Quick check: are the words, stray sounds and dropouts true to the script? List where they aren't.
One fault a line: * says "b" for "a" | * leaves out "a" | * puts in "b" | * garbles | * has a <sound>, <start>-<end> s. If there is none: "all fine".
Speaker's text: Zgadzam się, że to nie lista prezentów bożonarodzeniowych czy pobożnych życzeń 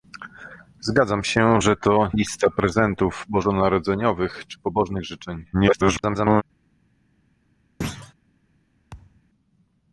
* leaves out "nie"
* garbles
* has a thud, 7.8-8.1 s
* has a thud, 8.9-9.2 s